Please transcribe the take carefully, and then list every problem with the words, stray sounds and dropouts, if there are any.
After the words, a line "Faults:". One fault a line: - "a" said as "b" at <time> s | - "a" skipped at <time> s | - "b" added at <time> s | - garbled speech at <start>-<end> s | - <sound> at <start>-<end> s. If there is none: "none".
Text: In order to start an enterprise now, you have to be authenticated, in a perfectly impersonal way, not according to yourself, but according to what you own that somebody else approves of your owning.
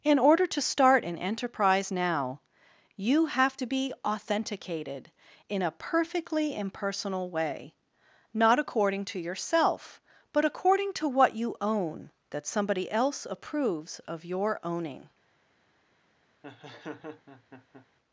In order to start an enterprise now, you have to be authenticated, in a perfectly impersonal way, not according to yourself, but according to what you own that somebody else approves of your owning.
Faults:
- laugh at 16.4-17.9 s